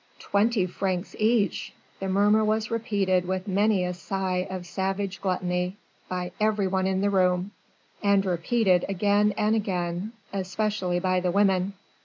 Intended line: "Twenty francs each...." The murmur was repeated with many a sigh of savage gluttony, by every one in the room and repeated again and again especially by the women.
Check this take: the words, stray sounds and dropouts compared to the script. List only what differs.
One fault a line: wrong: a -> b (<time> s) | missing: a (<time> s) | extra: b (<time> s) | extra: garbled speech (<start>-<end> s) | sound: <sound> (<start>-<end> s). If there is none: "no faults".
no faults